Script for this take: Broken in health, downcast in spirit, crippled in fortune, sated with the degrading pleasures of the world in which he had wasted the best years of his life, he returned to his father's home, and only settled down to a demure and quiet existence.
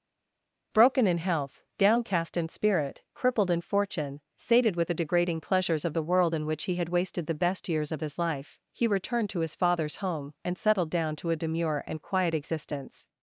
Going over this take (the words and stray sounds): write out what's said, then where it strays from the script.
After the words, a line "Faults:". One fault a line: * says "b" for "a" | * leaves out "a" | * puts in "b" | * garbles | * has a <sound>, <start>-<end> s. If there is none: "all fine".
Broken in health, downcast in spirit, crippled in fortune, sated with the degrading pleasures of the world in which he had wasted the best years of his life, he returned to his father's home, and settled down to a demure and quiet existence.
Faults:
* leaves out "only"